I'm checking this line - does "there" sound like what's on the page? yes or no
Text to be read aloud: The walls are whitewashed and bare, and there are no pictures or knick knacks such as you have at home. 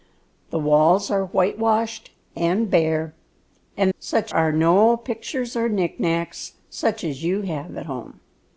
no